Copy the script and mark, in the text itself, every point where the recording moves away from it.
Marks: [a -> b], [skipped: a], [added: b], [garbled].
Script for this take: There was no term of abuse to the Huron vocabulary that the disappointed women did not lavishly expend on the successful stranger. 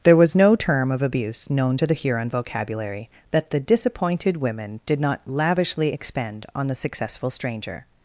There was no term of abuse [added: known] to the Huron vocabulary that the disappointed women did not lavishly expend on the successful stranger.